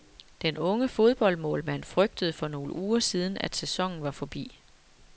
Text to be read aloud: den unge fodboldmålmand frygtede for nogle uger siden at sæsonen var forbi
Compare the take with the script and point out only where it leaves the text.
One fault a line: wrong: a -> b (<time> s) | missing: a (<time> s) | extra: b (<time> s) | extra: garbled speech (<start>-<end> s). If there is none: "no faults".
no faults